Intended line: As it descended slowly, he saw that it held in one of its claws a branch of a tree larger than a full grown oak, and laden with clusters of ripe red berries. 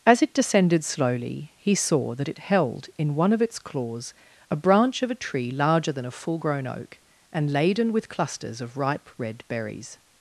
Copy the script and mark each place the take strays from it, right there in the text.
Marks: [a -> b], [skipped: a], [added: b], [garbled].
As it descended slowly, he saw that it held in one of its claws a branch of a tree larger than a full grown oak, and laden with clusters of ripe red berries.